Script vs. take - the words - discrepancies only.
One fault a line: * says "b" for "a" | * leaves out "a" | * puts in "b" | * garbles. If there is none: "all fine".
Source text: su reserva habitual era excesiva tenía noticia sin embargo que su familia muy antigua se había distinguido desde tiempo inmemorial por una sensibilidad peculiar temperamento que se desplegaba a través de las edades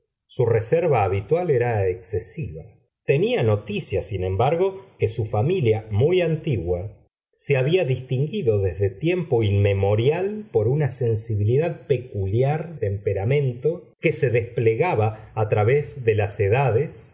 all fine